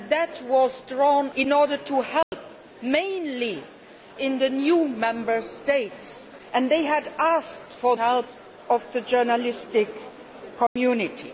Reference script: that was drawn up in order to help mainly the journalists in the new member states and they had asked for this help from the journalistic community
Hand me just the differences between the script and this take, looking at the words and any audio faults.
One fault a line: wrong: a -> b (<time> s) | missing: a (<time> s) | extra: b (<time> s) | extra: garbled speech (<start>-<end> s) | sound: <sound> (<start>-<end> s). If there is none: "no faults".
missing: up (1.3 s)
sound: dropout (2.2-2.3 s)
missing: the journalists (3.6 s)
missing: this (8.0 s)
sound: dropout (10.7-10.8 s)